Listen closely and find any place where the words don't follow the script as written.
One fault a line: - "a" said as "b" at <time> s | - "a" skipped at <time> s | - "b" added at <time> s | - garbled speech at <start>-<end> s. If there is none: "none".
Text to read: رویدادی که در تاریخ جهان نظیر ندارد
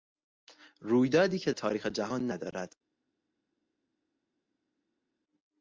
- "در" skipped at 1.5 s
- "نظیر" skipped at 2.3 s